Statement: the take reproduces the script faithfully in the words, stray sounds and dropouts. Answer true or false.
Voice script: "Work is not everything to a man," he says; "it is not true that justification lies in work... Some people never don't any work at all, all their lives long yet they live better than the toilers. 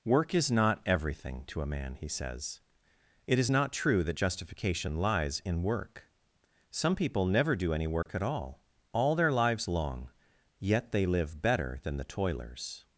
false